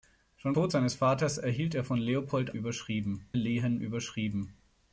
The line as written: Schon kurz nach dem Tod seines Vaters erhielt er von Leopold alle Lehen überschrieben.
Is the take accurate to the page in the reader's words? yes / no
no